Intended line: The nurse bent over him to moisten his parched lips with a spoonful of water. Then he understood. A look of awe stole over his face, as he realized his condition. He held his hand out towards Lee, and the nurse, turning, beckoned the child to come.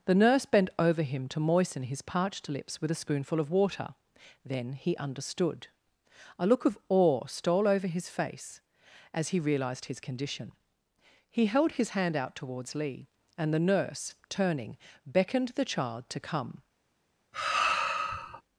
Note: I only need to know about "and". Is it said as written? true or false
true